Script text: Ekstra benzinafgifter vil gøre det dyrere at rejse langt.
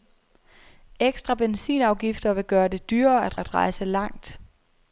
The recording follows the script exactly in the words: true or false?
false